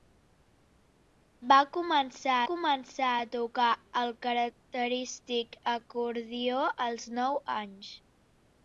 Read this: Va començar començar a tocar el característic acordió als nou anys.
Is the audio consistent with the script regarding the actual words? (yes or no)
yes